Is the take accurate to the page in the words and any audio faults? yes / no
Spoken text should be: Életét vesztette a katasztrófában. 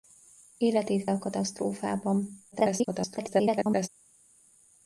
no